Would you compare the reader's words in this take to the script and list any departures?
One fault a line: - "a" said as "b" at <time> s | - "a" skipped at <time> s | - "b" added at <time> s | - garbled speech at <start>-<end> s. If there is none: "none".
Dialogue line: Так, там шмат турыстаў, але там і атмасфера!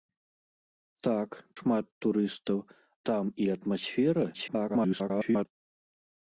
- "там" skipped at 1.3 s
- "але" skipped at 2.6 s
- garbled speech at 4.3-5.5 s